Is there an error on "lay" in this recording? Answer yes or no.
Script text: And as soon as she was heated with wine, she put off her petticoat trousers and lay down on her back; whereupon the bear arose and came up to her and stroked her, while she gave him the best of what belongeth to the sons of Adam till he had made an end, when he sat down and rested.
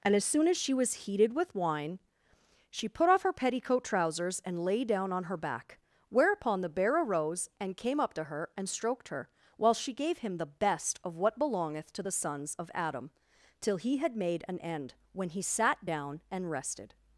no